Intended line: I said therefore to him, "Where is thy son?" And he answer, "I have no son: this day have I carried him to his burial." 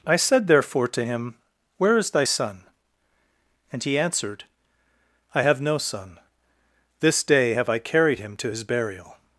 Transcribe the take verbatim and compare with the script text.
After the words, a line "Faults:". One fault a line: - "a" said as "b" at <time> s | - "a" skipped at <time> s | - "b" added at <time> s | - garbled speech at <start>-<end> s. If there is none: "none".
I said therefore to him, "Where is thy son?" And he answered, "I have no son: this day have I carried him to his burial."
Faults:
- "answer" said as "answered" at 4.0 s